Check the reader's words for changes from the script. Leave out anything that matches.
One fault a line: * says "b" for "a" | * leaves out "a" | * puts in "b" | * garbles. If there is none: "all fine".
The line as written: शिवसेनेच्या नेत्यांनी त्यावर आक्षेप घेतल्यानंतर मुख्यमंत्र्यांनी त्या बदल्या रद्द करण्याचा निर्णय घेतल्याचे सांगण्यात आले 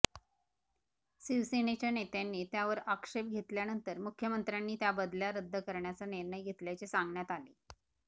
all fine